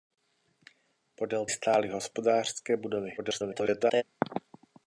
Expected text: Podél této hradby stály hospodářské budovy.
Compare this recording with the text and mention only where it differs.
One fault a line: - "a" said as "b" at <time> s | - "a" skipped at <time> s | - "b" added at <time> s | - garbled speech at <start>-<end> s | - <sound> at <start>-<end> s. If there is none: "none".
- "této hradby" skipped at 1.4 s
- garbled speech at 3.2-4.0 s